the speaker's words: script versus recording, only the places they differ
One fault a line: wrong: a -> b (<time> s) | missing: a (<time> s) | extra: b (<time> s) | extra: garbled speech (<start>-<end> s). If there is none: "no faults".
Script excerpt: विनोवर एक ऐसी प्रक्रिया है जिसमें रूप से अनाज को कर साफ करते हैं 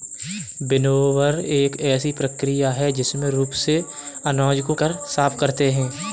no faults